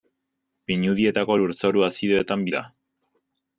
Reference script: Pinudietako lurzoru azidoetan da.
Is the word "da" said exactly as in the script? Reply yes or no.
yes